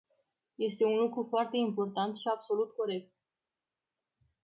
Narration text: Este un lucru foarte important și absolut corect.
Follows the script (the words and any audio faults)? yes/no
yes